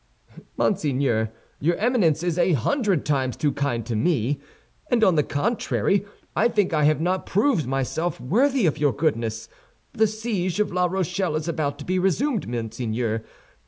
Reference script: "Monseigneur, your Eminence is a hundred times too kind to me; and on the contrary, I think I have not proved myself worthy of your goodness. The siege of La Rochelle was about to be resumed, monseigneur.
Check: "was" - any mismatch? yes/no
yes